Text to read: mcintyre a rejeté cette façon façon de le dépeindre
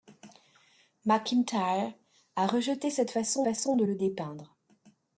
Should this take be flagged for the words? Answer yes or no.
no